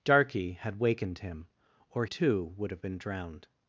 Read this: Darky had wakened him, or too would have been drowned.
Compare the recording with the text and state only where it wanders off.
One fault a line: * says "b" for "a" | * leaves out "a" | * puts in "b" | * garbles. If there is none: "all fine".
all fine